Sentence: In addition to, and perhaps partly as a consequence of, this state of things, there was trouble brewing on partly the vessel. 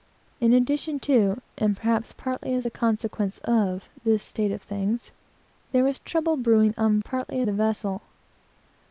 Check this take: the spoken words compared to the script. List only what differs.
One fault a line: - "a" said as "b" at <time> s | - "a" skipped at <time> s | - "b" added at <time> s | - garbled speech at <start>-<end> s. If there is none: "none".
none